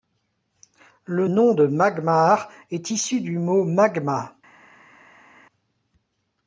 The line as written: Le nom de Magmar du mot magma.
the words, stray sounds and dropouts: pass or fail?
fail